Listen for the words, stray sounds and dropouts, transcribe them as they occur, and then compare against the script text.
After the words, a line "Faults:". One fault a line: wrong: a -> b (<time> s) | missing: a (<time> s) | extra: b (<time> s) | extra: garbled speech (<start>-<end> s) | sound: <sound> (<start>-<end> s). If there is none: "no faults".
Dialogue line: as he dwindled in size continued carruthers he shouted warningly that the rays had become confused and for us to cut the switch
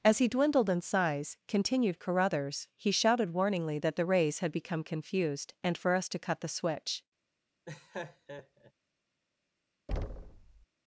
as he dwindled in size continued carruthers he shouted warningly that the rays had become confused and for us to cut the switch
Faults:
sound: laugh (7.6-8.7 s)
sound: thud (9.9-10.7 s)